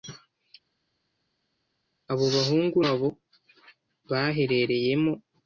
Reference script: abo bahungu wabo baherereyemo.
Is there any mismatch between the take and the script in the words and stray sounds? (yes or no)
no